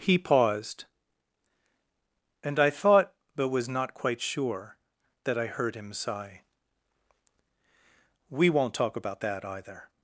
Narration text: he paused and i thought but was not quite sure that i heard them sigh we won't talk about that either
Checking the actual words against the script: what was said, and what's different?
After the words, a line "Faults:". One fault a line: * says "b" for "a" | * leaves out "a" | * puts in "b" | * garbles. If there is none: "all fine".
he paused and i thought but was not quite sure that i heard him sigh we won't talk about that either
Faults:
* says "him" for "them"